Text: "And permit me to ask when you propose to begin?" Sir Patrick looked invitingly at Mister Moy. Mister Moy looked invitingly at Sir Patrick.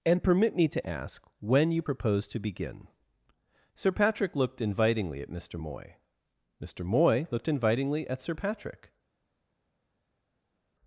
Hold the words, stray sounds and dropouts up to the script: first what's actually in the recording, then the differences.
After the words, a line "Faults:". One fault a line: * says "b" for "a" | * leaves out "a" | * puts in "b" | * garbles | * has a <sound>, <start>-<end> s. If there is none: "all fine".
"And permit me to ask when you propose to begin?" Sir Patrick looked invitingly at Mister Moy. Mister Moy looked invitingly at Sir Patrick.
Faults:
all fine